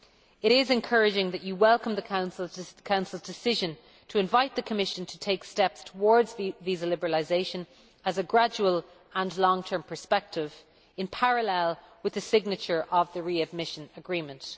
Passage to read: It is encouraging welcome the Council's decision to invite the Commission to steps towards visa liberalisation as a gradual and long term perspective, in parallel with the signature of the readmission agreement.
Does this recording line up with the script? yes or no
no